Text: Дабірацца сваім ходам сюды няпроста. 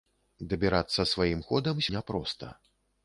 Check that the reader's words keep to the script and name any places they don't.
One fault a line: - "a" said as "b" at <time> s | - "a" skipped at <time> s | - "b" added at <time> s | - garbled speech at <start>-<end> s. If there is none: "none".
- "сюды" skipped at 1.8 s